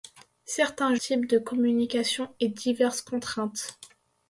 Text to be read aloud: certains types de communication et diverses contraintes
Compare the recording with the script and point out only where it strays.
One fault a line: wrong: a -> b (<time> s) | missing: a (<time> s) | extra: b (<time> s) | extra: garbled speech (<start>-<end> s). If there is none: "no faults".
no faults